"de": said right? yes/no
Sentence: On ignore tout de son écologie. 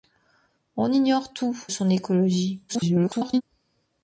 no